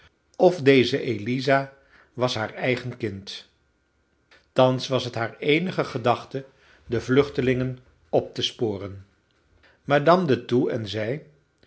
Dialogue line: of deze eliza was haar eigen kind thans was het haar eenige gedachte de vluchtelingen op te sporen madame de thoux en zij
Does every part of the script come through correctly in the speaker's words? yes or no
yes